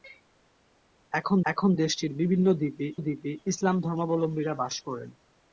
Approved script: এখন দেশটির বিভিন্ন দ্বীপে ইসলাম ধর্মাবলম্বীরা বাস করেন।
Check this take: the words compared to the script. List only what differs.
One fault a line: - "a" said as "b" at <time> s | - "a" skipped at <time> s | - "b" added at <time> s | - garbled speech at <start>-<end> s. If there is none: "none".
- "এখন" added at 1.5 s
- "দ্বীপে" added at 3.0 s